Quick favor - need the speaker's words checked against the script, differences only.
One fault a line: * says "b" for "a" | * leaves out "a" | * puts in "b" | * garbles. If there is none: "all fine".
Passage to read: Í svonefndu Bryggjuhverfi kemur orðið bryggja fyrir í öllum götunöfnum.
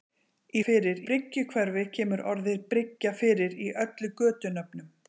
* says "fyrir" for "svonefndu"